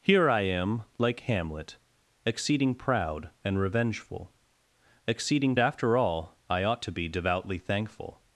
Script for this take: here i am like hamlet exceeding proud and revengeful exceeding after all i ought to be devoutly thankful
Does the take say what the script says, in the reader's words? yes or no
yes